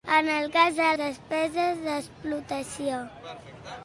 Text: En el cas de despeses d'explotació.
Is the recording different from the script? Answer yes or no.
no